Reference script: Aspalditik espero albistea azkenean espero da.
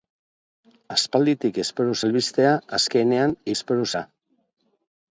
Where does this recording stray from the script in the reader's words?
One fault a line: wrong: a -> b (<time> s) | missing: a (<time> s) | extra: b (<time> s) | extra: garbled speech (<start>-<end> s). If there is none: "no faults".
no faults